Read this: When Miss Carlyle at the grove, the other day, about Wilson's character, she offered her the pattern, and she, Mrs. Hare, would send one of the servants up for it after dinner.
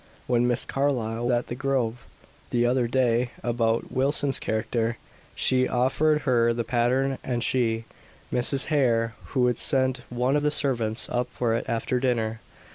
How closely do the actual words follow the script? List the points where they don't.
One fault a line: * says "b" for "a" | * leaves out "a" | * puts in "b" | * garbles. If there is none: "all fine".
all fine